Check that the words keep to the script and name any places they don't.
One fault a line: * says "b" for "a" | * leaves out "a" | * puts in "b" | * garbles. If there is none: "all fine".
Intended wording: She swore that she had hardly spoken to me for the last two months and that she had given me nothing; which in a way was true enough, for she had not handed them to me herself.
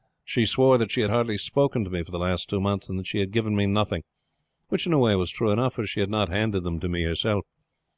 all fine